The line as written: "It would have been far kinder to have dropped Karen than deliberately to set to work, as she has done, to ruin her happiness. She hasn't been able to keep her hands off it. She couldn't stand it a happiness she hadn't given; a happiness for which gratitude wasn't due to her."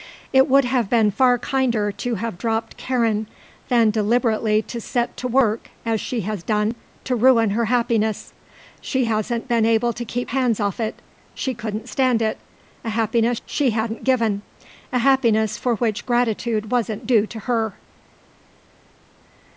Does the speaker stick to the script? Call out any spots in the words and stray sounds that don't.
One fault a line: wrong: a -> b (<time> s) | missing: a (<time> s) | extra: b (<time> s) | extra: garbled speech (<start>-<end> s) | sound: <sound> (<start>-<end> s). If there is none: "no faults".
missing: her (10.3 s)